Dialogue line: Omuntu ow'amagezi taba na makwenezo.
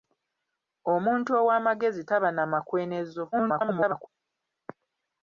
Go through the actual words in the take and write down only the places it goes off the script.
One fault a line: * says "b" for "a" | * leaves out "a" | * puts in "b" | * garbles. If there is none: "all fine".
* garbles